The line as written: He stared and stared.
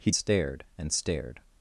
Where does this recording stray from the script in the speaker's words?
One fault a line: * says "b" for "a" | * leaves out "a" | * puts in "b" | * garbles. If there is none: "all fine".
all fine